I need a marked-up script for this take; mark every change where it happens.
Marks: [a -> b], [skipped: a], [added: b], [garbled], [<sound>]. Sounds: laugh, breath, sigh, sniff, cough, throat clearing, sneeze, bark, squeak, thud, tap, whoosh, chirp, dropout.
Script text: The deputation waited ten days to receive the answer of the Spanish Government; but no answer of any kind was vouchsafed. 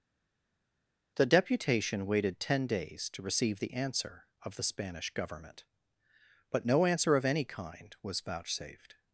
The deputation waited ten days to receive the answer of the Spanish Government; but no answer of any kind was vouchsafed.